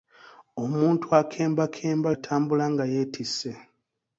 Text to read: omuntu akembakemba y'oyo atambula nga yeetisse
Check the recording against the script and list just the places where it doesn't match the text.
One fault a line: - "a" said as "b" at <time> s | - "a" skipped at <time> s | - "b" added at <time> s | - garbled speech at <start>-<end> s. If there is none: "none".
- "y'oyo" skipped at 2.1 s